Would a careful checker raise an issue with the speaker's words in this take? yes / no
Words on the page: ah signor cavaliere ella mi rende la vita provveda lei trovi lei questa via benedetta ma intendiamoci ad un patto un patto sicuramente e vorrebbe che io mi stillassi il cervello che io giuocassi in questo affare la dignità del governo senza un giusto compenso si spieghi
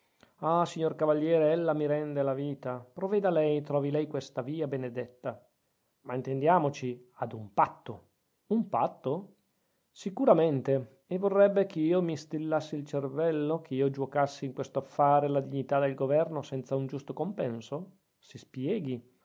no